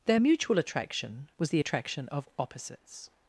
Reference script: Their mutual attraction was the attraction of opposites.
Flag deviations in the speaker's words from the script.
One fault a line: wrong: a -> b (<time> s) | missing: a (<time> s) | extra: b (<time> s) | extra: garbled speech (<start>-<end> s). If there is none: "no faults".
no faults